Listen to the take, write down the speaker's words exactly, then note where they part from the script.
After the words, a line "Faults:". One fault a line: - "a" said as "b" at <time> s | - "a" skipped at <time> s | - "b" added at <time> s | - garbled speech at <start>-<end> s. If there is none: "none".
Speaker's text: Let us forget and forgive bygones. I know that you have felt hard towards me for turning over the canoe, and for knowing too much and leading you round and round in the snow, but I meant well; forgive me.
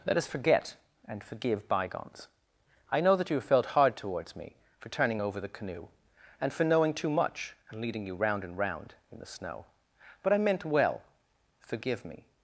Let us forget and forgive bygones. I know that you have felt hard towards me for turning over the canoe, and for knowing too much and leading you round and round in the snow, but I meant well; forgive me.
Faults:
none